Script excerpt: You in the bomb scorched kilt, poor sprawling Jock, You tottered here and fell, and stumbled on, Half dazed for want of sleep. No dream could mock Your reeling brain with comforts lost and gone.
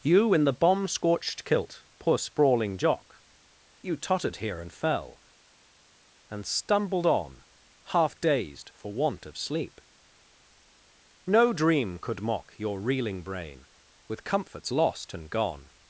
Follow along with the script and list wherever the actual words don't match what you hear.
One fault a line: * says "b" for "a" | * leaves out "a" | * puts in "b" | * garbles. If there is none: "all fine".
all fine